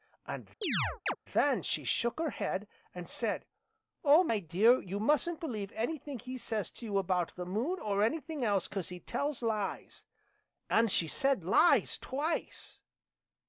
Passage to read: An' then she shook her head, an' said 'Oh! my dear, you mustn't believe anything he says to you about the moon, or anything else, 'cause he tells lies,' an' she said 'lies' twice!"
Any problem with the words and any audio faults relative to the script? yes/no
yes